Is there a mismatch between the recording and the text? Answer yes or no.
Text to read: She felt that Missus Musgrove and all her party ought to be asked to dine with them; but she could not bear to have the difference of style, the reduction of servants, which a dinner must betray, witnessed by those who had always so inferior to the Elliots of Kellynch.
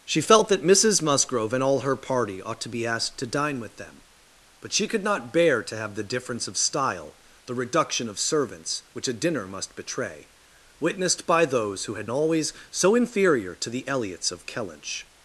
no